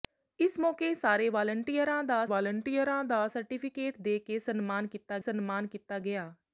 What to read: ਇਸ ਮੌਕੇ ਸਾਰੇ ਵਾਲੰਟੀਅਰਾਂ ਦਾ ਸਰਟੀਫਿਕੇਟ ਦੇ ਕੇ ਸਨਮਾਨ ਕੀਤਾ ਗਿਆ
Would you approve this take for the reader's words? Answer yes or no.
no